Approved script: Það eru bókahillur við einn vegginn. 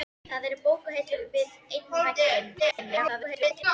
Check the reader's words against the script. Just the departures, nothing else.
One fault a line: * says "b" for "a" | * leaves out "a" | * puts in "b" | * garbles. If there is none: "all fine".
* garbles